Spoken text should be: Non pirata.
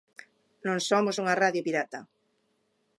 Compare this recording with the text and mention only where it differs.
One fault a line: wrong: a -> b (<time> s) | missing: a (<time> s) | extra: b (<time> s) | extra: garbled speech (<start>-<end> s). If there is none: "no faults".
extra: somos unha radio (0.9 s)